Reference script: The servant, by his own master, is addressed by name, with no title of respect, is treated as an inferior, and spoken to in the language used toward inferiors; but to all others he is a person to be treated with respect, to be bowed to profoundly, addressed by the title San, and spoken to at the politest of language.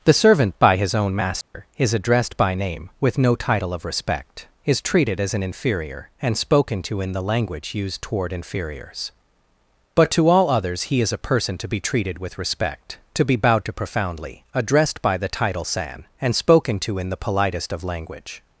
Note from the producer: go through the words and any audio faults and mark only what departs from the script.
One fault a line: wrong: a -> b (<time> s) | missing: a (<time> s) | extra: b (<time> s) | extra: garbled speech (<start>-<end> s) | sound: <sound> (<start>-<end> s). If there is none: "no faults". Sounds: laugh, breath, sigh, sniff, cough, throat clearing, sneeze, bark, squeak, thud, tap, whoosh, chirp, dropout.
sound: dropout (1.4-1.5 s)
wrong: at -> in (17.0 s)